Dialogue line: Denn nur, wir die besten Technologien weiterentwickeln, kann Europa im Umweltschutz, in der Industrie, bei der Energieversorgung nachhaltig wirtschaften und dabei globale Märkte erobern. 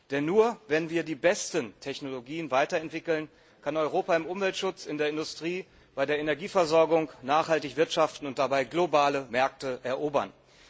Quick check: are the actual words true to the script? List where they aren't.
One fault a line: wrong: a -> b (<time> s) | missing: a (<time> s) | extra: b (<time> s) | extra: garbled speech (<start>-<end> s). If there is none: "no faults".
extra: wenn (0.7 s)